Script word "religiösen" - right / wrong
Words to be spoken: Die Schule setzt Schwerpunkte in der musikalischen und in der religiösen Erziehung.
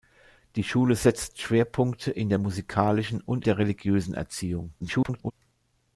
right